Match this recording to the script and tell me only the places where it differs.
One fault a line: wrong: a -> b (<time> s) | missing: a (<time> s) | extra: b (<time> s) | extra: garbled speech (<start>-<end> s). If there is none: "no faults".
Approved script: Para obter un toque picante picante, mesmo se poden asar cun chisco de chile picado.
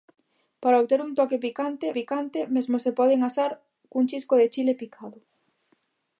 no faults